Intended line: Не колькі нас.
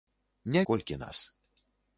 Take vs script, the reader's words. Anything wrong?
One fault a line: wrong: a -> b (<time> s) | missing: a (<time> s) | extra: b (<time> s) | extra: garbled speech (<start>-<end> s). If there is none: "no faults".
no faults